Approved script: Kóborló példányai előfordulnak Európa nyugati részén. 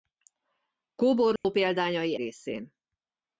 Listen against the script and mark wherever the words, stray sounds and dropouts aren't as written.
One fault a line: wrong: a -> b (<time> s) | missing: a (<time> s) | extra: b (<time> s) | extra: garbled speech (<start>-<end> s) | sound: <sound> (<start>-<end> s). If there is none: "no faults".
sound: dropout (1.4-1.4 s)
missing: előfordulnak Európa nyugati (2.2 s)